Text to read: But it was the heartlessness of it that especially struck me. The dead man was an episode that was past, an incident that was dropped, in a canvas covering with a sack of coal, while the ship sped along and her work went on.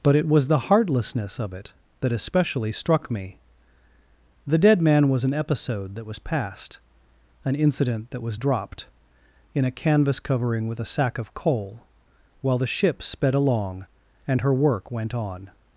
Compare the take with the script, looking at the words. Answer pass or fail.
pass